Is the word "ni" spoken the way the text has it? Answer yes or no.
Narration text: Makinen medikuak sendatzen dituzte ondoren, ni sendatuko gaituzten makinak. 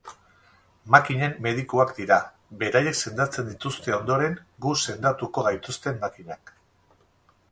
no